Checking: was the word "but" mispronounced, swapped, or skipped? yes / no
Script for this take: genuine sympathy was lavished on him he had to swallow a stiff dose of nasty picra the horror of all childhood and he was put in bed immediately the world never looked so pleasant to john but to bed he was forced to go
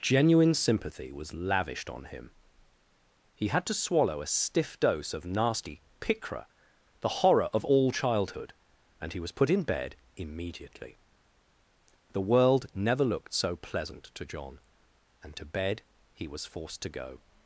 yes